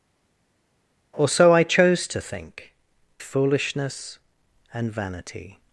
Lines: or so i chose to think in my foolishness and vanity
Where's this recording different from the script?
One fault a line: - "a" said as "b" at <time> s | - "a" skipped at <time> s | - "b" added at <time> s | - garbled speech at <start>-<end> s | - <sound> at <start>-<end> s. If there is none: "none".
- "in my" skipped at 2.7 s